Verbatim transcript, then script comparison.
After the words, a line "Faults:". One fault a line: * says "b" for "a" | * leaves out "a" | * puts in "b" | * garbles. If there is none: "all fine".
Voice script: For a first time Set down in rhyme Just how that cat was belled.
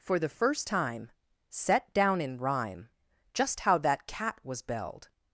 For the first time Set down in rhyme Just how that cat was belled.
Faults:
* says "the" for "a"